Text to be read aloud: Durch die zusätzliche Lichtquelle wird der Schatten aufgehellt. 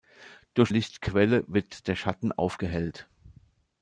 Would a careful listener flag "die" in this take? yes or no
yes